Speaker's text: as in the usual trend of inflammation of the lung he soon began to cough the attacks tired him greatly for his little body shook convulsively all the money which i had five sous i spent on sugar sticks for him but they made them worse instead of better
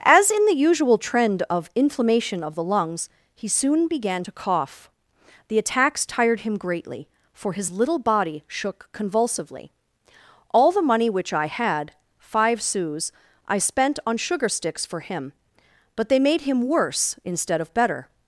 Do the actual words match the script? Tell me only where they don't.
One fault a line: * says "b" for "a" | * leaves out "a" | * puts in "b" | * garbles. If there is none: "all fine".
* says "lungs" for "lung"
* says "him" for "them"